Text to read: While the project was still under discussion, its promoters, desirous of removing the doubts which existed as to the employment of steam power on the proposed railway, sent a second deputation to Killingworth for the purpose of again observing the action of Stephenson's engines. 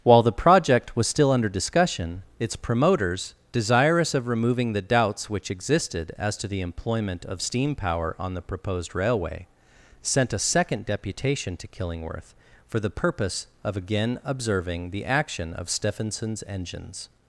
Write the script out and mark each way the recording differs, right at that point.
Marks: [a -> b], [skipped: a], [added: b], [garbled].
While the project was still under discussion, its promoters, desirous of removing the doubts which existed as to the employment of steam power on the proposed railway, sent a second deputation to Killingworth for the purpose of again observing the action of Stephenson's engines.